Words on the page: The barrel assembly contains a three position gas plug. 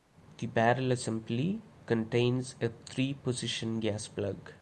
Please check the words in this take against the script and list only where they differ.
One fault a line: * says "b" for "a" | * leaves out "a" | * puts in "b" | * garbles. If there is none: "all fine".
all fine